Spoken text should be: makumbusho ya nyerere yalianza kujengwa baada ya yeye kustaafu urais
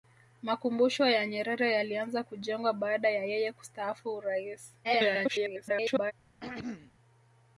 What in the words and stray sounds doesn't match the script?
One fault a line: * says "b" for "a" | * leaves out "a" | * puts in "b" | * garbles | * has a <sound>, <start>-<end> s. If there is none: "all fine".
* garbles
* has a throat clearing, 6.4-6.9 s